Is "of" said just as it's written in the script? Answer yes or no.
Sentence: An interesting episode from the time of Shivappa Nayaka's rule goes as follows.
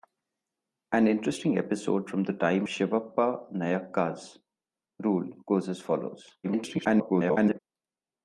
no